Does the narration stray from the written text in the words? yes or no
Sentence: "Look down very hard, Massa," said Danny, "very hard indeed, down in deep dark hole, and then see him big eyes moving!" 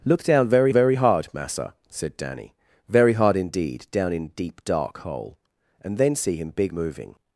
yes